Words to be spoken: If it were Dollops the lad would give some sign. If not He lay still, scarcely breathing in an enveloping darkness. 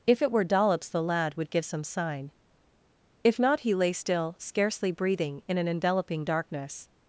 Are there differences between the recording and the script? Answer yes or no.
no